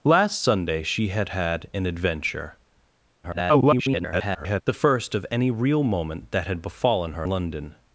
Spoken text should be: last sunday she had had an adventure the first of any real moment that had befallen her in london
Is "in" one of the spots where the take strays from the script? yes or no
yes